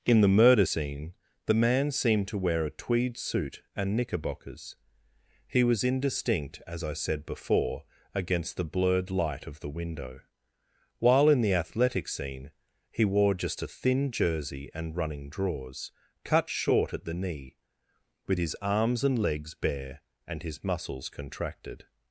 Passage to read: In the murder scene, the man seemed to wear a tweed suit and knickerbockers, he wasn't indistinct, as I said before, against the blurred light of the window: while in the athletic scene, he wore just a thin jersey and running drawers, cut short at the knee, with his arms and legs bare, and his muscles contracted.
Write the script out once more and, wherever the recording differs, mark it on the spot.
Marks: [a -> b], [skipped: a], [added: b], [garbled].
In the murder scene, the man seemed to wear a tweed suit and knickerbockers, he [wasn't -> was] indistinct, as I said before, against the blurred light of the window: while in the athletic scene, he wore just a thin jersey and running drawers, cut short at the knee, with his arms and legs bare, and his muscles contracted.